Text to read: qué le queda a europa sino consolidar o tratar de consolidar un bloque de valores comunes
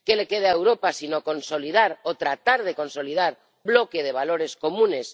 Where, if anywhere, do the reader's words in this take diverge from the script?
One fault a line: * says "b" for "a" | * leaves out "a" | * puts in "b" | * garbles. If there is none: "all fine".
* leaves out "un"